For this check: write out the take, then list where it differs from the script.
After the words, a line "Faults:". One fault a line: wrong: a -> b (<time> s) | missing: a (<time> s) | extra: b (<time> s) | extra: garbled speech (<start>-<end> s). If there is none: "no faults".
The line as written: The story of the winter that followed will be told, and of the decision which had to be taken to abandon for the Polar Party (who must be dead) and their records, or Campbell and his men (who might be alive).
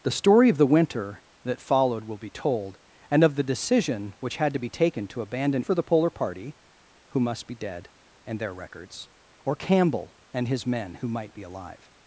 The story of the winter that followed will be told, and of the decision which had to be taken to abandon for the Polar Party (who must be dead) and their records, or Campbell and his men (who might be alive).
Faults:
no faults